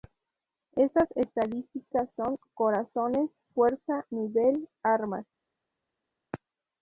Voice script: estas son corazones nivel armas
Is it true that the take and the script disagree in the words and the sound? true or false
true